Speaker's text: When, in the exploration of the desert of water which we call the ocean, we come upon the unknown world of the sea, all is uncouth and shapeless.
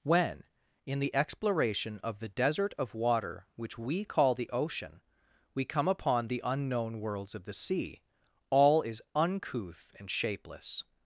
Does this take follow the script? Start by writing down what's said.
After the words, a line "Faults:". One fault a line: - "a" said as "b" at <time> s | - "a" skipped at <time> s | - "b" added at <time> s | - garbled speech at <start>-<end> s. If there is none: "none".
When, in the exploration of the desert of water which we call the ocean, we come upon the unknown worlds of the sea, all is uncouth and shapeless.
Faults:
- "world" said as "worlds" at 7.0 s